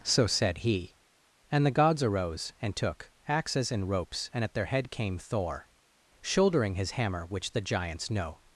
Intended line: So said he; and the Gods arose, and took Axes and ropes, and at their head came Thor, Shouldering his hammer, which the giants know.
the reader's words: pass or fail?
pass